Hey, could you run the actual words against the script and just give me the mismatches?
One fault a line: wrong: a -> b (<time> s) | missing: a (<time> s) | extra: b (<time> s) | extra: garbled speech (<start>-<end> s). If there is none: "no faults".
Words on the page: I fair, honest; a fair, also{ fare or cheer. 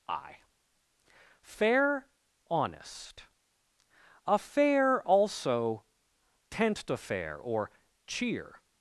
wrong: fare -> tent to fair (6.5 s)